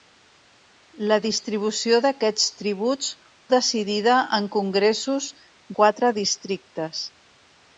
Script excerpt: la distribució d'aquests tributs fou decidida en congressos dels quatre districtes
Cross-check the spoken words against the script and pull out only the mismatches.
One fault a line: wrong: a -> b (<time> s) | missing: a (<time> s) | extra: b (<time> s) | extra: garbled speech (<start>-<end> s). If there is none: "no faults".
missing: fou (3.1 s)
missing: dels (5.3 s)